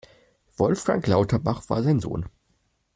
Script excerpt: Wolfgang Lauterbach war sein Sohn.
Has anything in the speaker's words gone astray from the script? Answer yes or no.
no